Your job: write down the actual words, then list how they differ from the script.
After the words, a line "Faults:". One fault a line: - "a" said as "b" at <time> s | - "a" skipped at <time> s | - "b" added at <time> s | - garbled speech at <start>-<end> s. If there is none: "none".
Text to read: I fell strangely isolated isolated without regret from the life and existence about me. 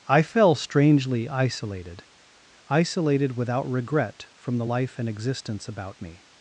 I fell strangely isolated isolated without regret from the life and existence about me.
Faults:
none